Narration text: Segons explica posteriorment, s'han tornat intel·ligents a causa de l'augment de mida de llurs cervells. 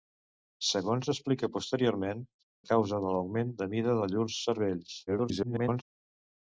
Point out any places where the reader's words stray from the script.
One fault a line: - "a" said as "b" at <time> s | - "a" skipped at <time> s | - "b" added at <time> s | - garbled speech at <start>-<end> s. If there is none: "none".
- "s'han tornat intel·ligents" skipped at 2.2 s
- garbled speech at 5.1-5.8 s